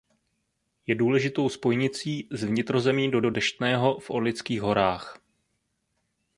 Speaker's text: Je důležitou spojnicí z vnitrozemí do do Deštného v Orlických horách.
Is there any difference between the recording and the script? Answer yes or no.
no